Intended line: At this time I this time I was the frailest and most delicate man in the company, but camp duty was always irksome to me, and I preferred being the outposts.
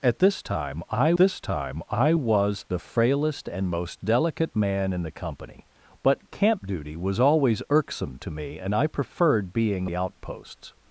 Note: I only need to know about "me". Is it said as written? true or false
true